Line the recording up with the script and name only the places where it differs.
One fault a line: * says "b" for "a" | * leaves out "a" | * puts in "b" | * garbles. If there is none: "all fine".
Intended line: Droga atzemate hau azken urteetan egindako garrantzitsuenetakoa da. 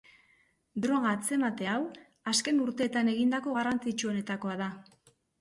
all fine